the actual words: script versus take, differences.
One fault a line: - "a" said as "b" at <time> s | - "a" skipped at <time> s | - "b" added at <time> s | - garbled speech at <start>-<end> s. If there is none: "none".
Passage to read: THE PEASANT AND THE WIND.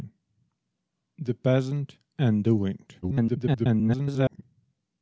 - garbled speech at 3.0-4.4 s